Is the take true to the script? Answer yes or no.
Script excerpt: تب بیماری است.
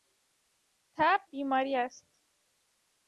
yes